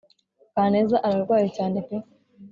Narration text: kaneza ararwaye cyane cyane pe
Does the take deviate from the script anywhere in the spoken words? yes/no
yes